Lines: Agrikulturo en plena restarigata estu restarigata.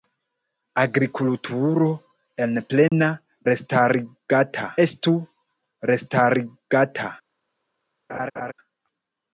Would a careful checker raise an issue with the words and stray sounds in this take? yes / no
yes